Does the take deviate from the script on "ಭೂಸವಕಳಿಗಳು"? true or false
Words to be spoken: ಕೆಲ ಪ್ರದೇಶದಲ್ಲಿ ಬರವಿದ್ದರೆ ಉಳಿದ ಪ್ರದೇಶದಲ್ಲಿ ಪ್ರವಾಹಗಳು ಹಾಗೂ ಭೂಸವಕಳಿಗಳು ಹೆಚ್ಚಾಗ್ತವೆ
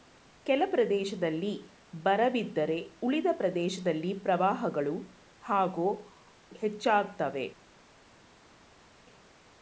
true